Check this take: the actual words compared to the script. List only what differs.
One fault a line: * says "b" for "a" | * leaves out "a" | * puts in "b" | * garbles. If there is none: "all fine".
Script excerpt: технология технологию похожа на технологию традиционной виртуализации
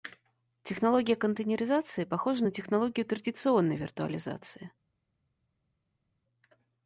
* says "контейнеризации" for "технологию"